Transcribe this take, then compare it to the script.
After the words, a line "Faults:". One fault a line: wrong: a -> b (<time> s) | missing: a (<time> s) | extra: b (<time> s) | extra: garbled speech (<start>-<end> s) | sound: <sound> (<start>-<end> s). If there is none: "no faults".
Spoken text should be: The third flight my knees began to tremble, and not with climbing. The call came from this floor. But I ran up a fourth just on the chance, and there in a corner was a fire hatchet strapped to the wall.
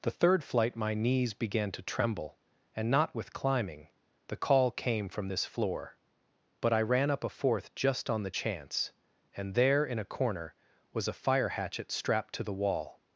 The third flight my knees began to tremble, and not with climbing. The call came from this floor. But I ran up a fourth just on the chance, and there in a corner was a fire hatchet strapped to the wall.
Faults:
no faults